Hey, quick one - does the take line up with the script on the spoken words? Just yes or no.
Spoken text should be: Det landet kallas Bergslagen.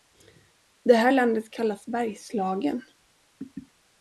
no